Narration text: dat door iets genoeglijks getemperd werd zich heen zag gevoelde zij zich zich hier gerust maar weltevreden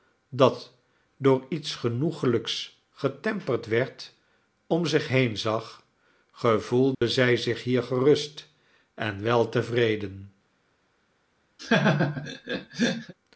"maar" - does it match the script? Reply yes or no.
no